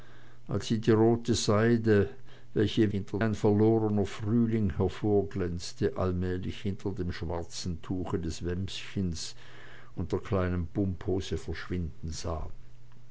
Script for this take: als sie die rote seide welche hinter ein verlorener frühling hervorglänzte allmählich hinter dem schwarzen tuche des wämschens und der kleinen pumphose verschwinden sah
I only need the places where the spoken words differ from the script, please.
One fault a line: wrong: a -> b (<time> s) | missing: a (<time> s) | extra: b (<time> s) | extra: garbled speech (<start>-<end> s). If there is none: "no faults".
no faults